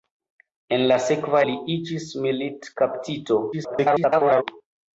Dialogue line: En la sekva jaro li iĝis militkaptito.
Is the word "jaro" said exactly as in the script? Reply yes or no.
no